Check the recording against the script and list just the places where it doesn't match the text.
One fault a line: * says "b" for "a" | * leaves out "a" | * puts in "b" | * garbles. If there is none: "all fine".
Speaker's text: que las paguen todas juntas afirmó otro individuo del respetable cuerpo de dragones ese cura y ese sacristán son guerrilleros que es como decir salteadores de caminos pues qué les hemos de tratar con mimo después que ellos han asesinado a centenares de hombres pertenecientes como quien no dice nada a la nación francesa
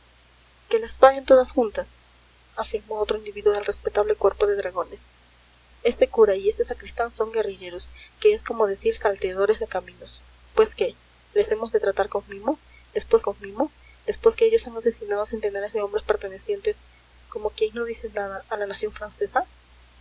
* puts in "con mimo después"